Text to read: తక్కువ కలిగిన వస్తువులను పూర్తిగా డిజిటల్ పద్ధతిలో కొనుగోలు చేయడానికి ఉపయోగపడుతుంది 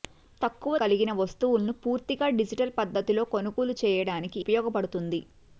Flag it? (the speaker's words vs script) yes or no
no